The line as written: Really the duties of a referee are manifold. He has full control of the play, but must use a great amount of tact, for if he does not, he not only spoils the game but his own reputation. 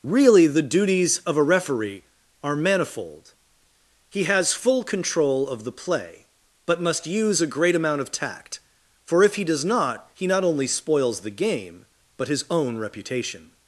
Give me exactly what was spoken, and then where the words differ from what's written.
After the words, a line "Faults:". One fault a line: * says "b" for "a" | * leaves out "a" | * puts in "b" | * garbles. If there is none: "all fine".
Really the duties of a referee are manifold. He has full control of the play, but must use a great amount of tact, for if he does not, he not only spoils the game but his own reputation.
Faults:
all fine